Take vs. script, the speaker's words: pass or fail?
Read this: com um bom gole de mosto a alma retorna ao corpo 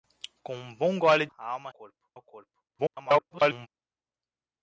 fail